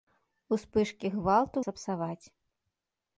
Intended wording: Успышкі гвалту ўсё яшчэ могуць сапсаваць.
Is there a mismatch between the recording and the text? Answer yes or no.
yes